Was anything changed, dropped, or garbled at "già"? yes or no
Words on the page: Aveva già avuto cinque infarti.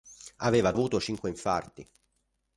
yes